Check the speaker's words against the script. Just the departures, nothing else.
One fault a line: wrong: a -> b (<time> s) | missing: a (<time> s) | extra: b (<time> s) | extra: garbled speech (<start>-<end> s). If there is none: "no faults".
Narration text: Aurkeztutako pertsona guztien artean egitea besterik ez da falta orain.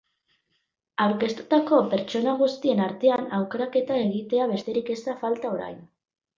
extra: aukeraketa (3.4 s)